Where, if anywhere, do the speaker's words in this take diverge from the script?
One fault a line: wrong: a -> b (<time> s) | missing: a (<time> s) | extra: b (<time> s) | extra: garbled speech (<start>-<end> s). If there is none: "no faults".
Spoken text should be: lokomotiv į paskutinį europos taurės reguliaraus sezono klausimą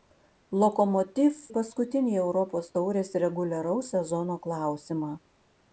no faults